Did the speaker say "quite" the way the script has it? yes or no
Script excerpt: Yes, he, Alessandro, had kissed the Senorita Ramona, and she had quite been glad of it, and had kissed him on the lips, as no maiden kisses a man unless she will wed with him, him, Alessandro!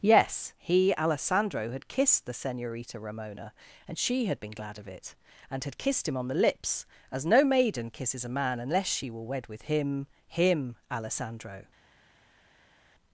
no